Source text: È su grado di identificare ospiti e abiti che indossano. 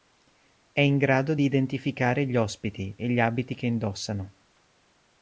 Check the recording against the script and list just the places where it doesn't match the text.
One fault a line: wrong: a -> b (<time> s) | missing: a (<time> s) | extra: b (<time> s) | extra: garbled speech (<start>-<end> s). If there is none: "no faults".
wrong: su -> in (0.8 s)
extra: gli (2.2 s)
extra: gli (3.1 s)